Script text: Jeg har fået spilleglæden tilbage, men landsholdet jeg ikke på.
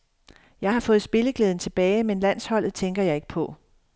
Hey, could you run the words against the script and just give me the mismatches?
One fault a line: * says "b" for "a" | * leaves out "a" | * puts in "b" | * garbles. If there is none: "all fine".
* puts in "tænker"